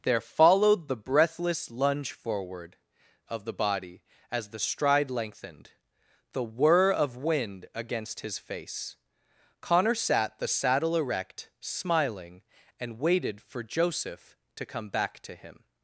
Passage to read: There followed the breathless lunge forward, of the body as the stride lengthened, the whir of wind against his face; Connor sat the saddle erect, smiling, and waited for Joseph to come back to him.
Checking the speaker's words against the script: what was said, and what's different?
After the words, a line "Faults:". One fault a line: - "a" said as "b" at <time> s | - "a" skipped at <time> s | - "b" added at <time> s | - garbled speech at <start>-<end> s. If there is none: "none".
There followed the breathless lunge forward, of the body as the stride lengthened, the whir of wind against his face; Connor sat the saddle erect, smiling, and waited for Joseph to come back to him.
Faults:
none